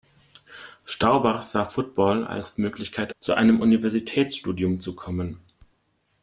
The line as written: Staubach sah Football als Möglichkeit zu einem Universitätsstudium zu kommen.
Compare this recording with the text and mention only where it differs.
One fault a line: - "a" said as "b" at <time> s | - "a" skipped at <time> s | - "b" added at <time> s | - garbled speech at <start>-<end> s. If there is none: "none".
none